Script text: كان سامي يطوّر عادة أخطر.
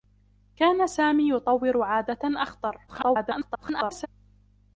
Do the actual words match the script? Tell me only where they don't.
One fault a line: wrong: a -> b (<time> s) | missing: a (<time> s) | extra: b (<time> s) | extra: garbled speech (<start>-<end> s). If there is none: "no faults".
extra: garbled speech (2.9-4.1 s)